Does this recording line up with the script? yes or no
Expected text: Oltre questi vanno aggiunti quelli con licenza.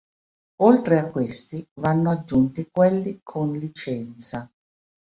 no